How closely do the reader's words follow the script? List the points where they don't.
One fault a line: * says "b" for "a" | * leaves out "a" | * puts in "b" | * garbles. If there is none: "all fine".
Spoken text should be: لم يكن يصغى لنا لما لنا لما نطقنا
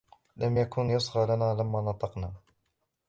* leaves out "لنا لما"